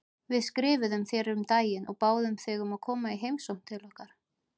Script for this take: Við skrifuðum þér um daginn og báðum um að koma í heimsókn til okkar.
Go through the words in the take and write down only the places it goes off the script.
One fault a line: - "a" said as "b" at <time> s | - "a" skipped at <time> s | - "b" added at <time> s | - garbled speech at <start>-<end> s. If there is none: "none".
- "þig" added at 2.4 s